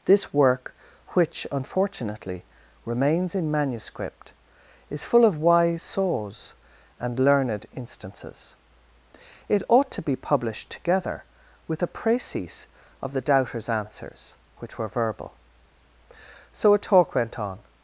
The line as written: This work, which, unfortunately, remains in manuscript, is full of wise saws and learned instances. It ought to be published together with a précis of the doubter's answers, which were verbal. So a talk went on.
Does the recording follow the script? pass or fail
pass